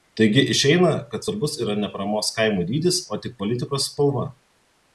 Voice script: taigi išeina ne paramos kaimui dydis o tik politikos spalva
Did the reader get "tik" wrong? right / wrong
right